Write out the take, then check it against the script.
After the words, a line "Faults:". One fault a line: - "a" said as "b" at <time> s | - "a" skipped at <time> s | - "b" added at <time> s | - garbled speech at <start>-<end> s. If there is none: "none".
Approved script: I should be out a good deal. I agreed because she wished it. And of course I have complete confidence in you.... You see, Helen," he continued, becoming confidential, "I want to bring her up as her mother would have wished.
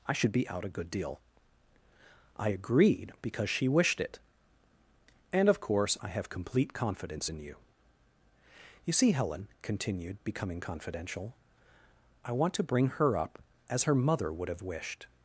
I should be out a good deal. I agreed because she wished it. And of course I have complete confidence in you.... You see, Helen," continued, becoming confidential, "I want to bring her up as her mother would have wished.
Faults:
- "he" skipped at 9.5 s